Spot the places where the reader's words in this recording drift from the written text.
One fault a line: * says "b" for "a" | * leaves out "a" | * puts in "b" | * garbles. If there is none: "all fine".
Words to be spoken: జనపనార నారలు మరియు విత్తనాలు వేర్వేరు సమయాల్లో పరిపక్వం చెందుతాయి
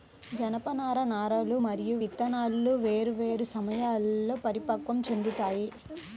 all fine